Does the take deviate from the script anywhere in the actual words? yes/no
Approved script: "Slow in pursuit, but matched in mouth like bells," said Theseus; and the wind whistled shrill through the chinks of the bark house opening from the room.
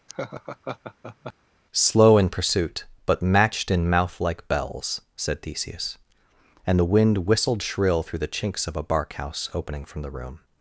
yes